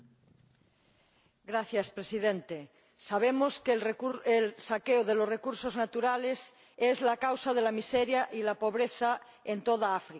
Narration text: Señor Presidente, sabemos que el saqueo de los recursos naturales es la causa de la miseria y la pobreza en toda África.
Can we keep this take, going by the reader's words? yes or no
yes